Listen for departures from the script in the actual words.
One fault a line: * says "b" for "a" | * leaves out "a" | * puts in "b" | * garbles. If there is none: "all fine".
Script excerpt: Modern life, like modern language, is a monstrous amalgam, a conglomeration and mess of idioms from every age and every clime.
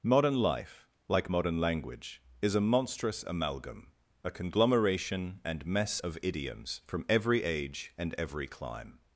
all fine